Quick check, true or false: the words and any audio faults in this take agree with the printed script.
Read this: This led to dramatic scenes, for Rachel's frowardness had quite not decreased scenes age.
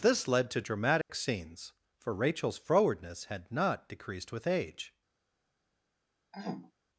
false